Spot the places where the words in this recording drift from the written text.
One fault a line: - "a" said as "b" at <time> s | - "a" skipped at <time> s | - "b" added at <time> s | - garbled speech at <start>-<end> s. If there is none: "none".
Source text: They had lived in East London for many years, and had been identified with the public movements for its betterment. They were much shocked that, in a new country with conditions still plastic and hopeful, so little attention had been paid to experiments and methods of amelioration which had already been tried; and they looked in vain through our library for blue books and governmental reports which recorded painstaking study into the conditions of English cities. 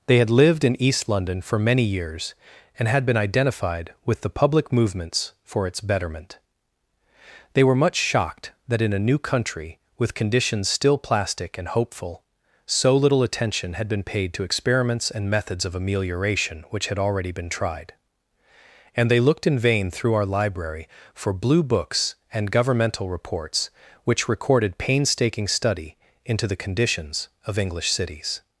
none